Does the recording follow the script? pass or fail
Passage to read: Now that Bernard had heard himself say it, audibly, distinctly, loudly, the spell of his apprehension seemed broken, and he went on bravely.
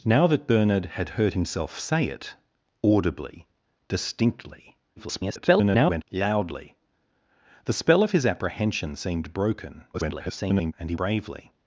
fail